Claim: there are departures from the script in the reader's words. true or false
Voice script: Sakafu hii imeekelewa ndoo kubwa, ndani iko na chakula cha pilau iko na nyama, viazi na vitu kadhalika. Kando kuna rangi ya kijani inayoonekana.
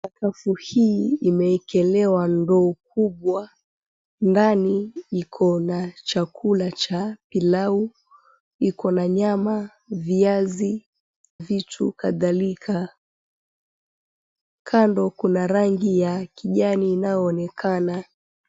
true